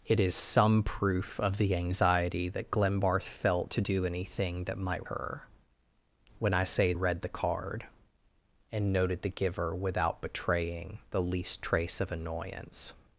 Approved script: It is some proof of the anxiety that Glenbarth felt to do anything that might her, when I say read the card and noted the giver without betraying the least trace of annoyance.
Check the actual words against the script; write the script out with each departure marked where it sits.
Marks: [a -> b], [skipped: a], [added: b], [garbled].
It is some proof of the anxiety that Glenbarth felt to do anything that might her, when I say read the card and noted the giver without betraying the least trace of annoyance.